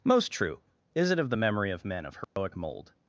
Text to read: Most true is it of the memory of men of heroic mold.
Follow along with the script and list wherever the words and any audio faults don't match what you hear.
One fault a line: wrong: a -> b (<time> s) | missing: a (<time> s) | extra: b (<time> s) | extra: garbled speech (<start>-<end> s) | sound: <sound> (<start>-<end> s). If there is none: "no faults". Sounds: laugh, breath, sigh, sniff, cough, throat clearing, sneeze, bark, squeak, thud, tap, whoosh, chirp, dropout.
sound: dropout (2.2-2.4 s)